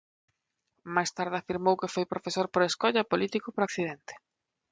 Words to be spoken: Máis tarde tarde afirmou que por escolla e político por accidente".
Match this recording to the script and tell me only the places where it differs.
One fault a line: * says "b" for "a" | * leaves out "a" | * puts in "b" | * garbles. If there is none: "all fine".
* leaves out "tarde"
* puts in "foi profesor"